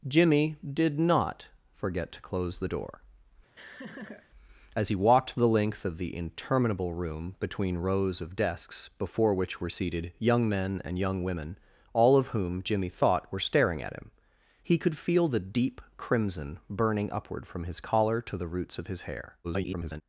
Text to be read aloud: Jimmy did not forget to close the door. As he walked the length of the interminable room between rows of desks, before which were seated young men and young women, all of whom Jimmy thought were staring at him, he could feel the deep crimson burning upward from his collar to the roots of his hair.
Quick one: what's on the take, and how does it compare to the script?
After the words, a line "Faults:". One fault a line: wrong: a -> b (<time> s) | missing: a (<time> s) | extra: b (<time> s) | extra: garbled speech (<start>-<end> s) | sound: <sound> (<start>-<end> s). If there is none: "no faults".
Jimmy did not forget to close the door. As he walked the length of the interminable room between rows of desks, before which were seated young men and young women, all of whom Jimmy thought were staring at him, he could feel the deep crimson burning upward from his collar to the roots of his hair. [garbled]
Faults:
sound: laugh (3.6-4.3 s)
extra: garbled speech (19.4-20.0 s)